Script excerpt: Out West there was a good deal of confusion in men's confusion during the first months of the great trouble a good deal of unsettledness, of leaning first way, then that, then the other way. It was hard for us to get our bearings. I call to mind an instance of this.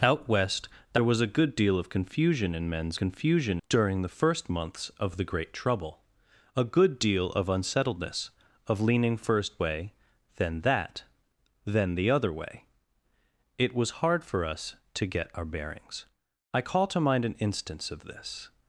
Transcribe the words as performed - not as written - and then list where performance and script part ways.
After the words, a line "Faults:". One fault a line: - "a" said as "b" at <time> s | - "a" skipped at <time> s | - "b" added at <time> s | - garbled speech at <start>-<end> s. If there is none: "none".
Out West there was a good deal of confusion in men's confusion during the first months of the great trouble a good deal of unsettledness, of leaning first way, then that, then the other way. It was hard for us to get our bearings. I call to mind an instance of this.
Faults:
none